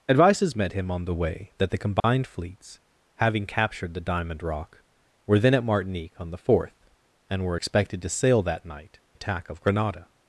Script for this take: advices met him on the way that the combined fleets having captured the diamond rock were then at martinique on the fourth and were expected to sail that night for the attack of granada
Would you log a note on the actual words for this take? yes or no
yes